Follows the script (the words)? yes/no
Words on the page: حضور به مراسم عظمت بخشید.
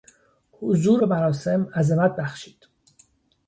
yes